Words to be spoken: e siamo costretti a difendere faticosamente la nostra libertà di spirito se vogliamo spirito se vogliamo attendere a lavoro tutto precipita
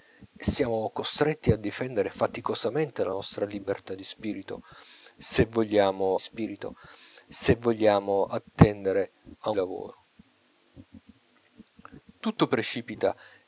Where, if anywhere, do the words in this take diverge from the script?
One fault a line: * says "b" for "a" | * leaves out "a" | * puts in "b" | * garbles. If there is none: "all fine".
all fine